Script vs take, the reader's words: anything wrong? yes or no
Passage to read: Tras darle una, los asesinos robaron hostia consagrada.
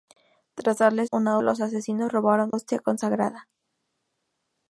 no